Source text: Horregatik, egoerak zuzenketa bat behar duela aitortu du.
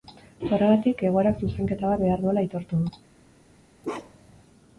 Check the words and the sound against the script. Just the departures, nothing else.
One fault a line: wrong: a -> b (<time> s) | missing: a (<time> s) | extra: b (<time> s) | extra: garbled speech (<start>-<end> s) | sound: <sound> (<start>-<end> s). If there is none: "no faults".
sound: bark (3.8-4.4 s)